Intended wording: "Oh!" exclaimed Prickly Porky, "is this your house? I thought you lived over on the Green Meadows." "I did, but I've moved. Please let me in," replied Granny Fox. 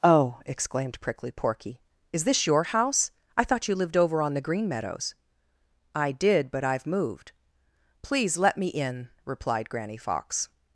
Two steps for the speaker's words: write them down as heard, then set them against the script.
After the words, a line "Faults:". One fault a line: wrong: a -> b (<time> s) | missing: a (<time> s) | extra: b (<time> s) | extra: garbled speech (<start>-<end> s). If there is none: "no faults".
"Oh!" exclaimed Prickly Porky, "is this your house? I thought you lived over on the Green Meadows." "I did, but I've moved. Please let me in," replied Granny Fox.
Faults:
no faults